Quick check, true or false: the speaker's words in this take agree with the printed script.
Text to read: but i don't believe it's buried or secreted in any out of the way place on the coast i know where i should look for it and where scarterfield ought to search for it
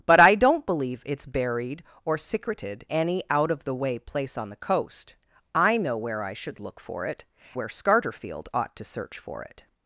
false